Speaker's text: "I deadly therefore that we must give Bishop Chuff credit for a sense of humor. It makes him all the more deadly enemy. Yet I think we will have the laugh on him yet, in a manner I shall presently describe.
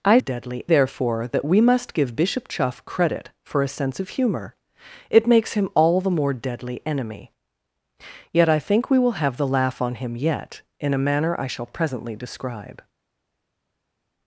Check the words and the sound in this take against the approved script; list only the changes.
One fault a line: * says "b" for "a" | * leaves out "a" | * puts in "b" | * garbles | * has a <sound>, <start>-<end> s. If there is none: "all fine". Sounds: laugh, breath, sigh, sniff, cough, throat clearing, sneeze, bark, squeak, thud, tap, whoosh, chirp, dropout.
all fine